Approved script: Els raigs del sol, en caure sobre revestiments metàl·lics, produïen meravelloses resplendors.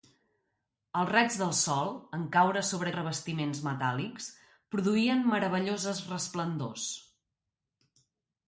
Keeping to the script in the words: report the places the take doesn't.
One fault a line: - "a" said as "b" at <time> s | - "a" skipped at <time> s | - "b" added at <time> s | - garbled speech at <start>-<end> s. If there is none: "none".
none